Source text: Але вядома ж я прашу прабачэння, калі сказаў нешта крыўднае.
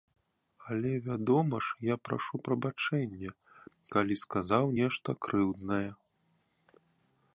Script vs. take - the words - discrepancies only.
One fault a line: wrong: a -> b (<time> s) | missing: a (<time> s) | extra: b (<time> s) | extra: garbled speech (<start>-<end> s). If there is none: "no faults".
no faults